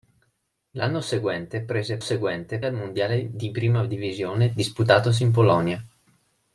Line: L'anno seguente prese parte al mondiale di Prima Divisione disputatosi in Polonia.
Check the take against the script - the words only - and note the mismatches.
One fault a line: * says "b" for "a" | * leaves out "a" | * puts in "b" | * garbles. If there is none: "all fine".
* says "seguente" for "parte"